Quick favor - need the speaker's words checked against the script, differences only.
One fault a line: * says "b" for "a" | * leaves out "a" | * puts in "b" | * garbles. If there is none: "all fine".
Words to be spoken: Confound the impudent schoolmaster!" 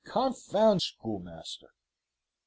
* leaves out "the impudent"